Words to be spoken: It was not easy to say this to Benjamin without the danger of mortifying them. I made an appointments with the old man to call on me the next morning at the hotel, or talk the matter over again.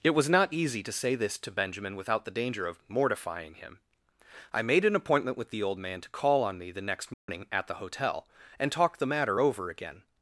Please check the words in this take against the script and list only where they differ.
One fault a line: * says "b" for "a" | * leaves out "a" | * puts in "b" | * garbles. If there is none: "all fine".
* says "him" for "them"
* says "appointment" for "appointments"
* says "and" for "or"